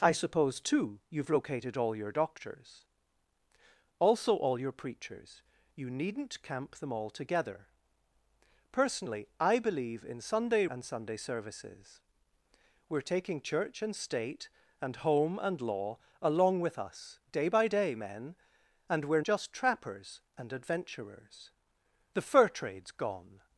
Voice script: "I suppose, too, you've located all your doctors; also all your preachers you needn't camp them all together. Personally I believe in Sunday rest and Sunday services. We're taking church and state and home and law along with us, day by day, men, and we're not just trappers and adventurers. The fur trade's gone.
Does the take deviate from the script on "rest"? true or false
true